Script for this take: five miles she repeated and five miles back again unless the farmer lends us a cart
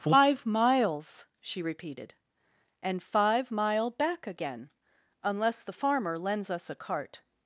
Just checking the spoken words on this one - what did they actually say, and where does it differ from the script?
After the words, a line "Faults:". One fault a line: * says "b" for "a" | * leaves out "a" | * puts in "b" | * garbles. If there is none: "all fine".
five miles she repeated and five mile back again unless the farmer lends us a cart
Faults:
* says "mile" for "miles"